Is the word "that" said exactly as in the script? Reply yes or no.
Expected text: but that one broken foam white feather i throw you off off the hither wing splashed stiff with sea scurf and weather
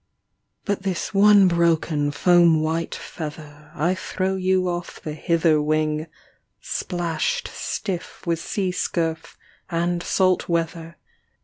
no